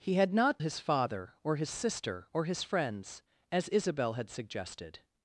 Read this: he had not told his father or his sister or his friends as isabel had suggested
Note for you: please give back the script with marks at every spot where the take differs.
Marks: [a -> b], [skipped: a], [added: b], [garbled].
he had not [skipped: told] his father or his sister or his friends as isabel had suggested